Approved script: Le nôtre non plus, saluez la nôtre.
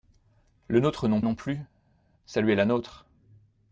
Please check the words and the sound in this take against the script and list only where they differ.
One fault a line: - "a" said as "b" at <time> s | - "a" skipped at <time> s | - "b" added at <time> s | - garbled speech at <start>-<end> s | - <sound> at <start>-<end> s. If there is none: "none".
- "non" added at 1.2 s